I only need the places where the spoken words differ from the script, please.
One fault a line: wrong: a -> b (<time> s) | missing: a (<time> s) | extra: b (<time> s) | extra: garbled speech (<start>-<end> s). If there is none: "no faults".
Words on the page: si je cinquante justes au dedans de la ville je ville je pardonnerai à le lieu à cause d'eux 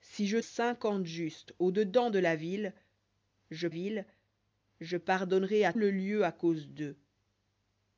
no faults